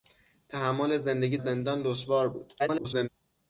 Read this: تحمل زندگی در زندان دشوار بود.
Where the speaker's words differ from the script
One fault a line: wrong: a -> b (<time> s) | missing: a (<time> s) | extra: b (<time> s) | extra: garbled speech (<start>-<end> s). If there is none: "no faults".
missing: در (1.4 s)
extra: garbled speech (2.6-3.1 s)